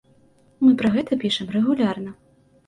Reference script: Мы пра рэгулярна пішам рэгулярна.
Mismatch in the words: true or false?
true